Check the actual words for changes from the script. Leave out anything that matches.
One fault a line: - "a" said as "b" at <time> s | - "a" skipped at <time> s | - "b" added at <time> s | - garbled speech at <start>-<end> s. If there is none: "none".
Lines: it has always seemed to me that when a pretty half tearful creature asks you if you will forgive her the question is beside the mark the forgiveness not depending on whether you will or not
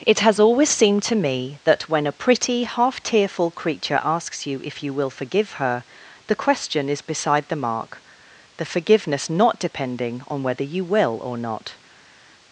none